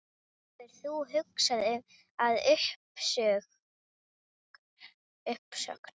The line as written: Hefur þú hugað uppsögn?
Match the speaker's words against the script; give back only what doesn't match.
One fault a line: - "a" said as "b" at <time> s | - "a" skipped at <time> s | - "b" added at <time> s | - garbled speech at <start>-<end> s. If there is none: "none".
- "að" added at 2.2 s